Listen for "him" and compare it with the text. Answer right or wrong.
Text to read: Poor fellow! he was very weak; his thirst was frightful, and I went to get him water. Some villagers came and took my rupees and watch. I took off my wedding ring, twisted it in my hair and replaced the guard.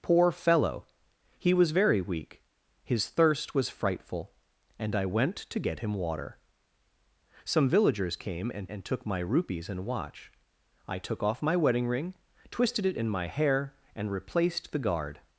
right